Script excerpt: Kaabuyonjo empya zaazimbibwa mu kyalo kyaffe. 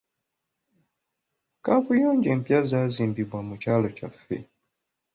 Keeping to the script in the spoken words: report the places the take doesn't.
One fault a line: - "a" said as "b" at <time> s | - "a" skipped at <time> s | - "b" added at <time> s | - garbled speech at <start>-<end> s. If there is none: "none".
none